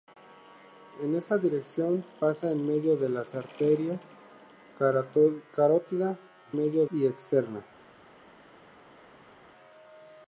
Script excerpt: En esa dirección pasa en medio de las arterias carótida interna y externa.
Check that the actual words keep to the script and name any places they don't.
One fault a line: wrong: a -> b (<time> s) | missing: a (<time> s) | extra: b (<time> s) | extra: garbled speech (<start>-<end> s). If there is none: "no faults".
wrong: interna -> medio (6.5 s)